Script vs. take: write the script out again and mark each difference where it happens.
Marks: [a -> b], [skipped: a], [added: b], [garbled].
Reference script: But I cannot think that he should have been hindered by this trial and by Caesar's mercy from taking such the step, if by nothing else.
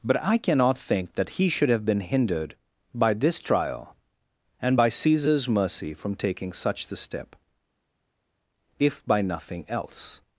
But I cannot think that he should have been hindered by this trial and by Caesar's mercy from taking such the step, if by nothing else.